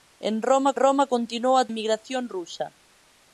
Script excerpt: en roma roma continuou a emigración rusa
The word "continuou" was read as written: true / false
true